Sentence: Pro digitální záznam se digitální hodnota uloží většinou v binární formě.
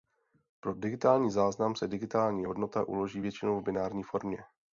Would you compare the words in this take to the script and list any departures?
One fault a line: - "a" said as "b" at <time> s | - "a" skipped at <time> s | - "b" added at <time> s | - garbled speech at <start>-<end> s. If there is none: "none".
none